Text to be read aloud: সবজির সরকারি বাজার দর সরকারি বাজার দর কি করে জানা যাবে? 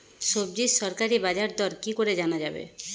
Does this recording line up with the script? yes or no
no